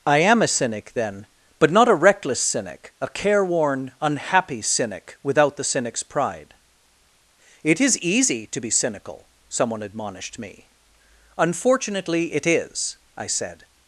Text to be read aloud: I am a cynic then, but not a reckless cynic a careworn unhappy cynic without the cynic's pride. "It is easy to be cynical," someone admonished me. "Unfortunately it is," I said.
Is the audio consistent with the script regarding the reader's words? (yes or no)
yes